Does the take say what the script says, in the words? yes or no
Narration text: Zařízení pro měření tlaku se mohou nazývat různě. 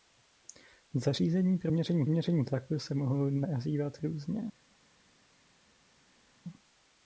no